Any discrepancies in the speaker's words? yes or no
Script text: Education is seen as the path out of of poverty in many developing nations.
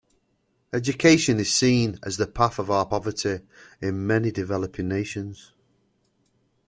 yes